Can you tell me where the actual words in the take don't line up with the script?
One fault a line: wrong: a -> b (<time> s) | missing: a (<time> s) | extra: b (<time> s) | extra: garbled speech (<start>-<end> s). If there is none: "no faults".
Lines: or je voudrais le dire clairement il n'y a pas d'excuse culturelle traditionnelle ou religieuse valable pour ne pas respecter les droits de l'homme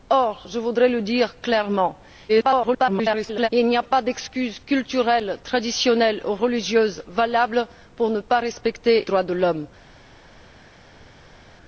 extra: garbled speech (2.3-3.5 s)
missing: les (9.0 s)